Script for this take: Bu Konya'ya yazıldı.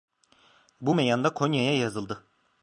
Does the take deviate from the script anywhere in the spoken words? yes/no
yes